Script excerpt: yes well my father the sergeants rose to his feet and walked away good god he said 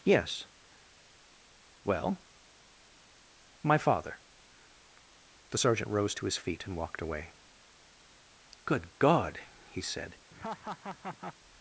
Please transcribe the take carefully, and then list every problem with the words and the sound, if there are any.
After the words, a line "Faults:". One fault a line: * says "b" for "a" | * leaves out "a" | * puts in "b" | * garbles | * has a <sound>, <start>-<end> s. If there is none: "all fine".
yes well my father the sergeant rose to his feet and walked away good god he said
Faults:
* says "sergeant" for "sergeants"
* has a laugh, 10.3-11.4 s